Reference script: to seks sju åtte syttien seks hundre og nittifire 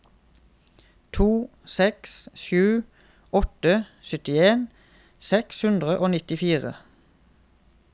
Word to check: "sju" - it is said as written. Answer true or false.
true